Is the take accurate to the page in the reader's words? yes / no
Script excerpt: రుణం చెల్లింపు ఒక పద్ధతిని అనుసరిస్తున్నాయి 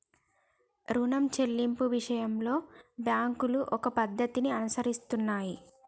no